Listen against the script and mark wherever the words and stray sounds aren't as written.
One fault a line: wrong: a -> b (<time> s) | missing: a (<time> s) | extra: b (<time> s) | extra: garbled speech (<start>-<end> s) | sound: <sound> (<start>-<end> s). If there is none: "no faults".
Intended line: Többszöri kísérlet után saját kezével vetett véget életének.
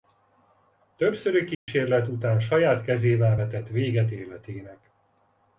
sound: dropout (1.5-1.7 s)